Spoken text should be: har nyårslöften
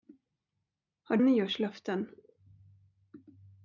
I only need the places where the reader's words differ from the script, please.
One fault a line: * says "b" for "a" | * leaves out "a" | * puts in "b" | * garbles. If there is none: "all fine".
all fine